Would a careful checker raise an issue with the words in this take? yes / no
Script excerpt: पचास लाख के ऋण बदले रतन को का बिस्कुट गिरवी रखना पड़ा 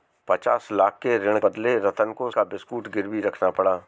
no